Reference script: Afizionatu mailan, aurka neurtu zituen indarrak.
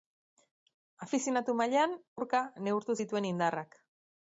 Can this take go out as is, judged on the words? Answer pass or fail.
pass